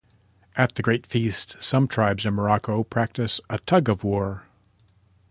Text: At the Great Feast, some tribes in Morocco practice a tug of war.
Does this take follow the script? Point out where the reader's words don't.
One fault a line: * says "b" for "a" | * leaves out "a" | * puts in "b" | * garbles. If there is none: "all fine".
all fine